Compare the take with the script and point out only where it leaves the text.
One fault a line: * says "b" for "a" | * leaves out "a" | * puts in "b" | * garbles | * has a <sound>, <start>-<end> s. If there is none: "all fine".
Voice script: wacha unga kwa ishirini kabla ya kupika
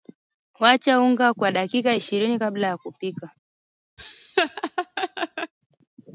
* puts in "dakika"
* has a laugh, 4.0-5.5 s